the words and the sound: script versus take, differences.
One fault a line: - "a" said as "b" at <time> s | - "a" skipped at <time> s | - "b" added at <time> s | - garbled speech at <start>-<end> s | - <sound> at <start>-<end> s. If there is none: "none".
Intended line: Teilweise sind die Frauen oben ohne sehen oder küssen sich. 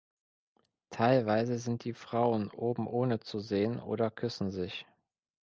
- "zu" added at 3.2 s